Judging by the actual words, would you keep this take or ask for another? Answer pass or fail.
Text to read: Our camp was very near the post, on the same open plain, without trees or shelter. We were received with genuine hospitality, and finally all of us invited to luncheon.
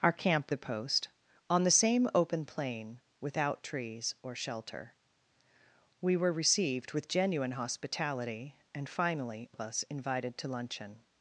fail